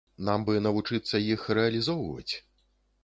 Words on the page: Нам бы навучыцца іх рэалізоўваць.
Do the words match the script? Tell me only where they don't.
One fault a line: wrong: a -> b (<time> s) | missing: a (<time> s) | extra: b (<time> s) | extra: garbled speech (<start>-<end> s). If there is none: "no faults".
no faults